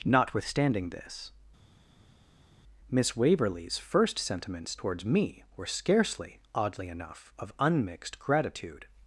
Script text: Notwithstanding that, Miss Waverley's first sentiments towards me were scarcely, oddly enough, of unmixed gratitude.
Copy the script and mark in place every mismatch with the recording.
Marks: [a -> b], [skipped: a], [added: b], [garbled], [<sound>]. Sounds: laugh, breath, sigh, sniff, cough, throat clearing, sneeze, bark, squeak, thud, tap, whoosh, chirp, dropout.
Notwithstanding [that, -> this] Miss Waverley's first sentiments towards me were scarcely, oddly enough, of unmixed gratitude.